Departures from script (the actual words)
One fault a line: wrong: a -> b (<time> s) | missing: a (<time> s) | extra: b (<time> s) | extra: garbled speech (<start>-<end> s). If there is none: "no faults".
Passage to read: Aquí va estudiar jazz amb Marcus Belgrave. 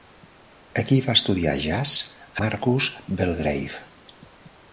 missing: amb (1.9 s)